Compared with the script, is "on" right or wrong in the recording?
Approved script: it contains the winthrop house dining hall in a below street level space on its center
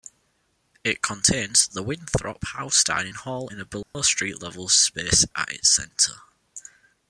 wrong